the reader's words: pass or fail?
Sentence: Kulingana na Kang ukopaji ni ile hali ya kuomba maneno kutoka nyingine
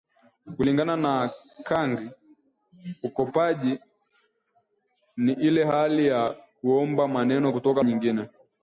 pass